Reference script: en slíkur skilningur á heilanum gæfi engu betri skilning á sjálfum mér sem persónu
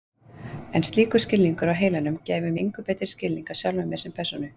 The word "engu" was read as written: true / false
true